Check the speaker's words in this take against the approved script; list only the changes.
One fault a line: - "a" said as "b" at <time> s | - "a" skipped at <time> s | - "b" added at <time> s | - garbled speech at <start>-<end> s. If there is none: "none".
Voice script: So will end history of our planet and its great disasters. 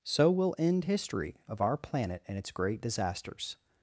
none